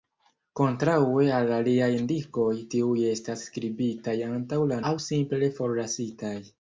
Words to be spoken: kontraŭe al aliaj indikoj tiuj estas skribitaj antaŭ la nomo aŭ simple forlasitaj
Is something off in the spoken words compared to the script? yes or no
yes